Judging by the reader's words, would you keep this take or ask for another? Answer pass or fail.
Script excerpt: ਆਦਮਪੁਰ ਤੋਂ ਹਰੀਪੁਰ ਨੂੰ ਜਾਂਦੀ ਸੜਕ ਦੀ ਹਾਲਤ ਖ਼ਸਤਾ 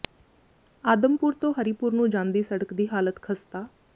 pass